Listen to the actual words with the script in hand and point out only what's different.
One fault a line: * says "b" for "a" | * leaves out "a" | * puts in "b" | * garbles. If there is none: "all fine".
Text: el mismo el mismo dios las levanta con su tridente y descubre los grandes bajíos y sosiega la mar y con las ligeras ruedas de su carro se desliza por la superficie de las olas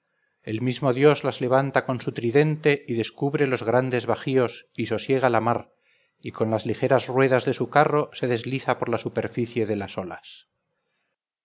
* leaves out "el mismo"